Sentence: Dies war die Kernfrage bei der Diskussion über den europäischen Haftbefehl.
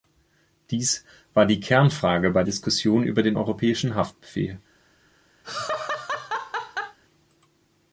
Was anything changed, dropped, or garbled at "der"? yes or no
yes